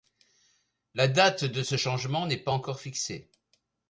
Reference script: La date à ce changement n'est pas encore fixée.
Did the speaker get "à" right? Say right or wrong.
wrong